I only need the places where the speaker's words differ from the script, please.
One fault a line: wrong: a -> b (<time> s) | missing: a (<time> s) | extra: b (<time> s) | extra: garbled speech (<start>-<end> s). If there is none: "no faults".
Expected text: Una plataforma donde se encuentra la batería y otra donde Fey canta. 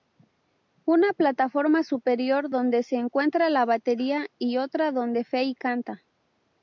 extra: superior (1.8 s)